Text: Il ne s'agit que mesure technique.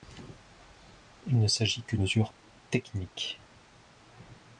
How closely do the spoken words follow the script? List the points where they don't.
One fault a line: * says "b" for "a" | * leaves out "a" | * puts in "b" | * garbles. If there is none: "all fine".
all fine